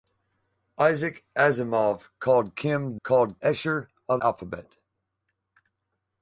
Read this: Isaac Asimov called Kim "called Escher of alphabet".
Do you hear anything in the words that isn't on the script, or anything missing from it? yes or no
no